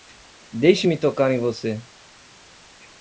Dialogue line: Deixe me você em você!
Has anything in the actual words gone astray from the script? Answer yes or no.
yes